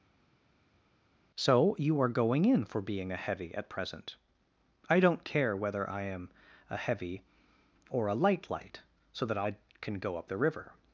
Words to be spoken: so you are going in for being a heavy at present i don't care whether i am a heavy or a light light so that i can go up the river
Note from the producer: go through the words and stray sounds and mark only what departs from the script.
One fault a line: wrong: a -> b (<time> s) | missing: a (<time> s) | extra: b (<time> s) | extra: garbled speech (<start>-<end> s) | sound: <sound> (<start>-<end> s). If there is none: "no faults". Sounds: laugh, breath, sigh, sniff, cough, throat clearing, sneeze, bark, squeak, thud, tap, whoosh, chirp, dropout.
no faults